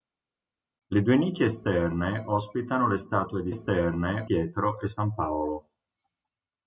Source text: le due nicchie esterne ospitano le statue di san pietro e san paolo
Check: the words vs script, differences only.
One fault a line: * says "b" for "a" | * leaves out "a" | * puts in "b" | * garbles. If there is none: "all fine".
* says "esterne" for "san"